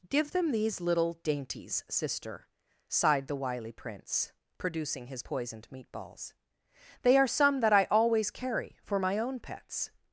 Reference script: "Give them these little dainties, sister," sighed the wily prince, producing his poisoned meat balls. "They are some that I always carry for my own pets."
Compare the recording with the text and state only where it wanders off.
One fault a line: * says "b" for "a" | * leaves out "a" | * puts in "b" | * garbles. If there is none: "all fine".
all fine